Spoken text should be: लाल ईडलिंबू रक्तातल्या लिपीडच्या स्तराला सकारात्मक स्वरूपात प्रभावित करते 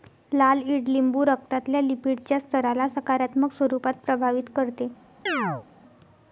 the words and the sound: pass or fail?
fail